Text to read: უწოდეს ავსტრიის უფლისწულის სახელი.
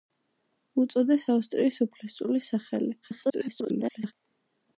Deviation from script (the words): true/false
true